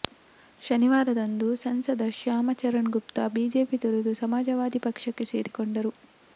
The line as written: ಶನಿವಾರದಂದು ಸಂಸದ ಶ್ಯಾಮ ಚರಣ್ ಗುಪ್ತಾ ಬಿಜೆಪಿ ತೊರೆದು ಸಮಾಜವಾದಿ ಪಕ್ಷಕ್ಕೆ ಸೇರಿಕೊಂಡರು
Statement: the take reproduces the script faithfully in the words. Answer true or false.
true